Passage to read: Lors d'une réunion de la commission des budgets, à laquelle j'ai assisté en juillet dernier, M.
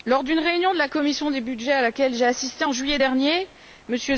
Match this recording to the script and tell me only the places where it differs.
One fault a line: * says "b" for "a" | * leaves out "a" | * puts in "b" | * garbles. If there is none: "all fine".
all fine